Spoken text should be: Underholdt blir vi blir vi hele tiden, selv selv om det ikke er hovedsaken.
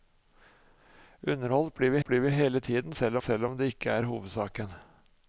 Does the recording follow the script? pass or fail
pass